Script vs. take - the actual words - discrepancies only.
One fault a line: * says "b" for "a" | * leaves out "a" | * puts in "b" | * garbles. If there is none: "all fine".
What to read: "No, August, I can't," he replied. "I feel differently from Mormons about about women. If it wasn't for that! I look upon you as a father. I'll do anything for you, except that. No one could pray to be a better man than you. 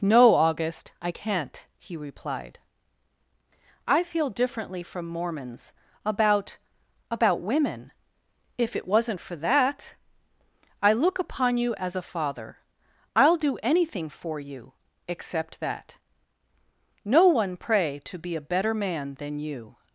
* leaves out "could"